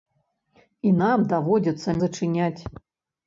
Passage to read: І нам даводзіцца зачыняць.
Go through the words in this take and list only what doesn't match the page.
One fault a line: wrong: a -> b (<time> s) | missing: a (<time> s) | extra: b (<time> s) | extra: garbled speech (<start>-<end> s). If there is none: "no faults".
no faults